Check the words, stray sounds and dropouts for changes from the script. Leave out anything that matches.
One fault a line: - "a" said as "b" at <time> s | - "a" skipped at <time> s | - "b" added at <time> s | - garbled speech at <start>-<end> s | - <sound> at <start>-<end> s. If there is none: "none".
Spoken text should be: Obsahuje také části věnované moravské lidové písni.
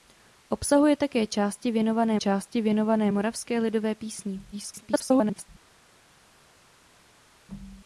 - "části věnované" added at 2.2 s
- garbled speech at 4.5-5.5 s